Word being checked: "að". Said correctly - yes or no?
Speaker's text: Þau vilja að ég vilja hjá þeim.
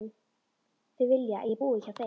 yes